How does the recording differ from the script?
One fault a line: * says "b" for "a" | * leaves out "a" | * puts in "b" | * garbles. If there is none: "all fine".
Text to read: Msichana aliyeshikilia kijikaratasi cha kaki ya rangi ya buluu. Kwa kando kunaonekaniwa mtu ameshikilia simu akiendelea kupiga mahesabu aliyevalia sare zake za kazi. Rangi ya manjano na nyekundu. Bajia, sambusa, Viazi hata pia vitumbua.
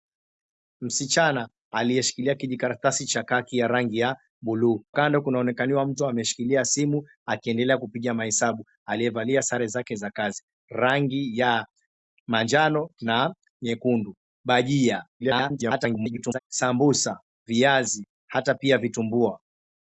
* leaves out "Kwa"
* garbles